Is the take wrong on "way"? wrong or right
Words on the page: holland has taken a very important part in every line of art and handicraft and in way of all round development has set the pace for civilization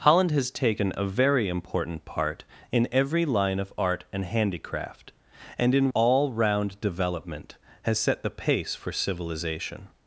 wrong